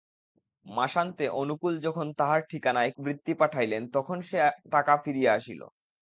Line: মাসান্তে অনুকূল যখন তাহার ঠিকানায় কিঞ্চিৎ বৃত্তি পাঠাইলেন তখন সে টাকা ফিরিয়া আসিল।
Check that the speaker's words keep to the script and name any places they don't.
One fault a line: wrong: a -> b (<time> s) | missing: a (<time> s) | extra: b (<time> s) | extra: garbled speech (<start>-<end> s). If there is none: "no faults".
missing: কিঞ্চিৎ (2.9 s)